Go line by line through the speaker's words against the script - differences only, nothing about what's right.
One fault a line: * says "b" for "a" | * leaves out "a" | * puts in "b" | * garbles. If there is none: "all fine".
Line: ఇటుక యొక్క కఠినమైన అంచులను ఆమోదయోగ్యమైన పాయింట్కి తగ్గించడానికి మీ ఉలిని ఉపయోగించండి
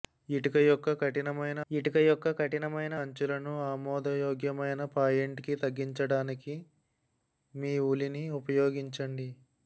* puts in "ఇటుక యొక్క కఠినమైన"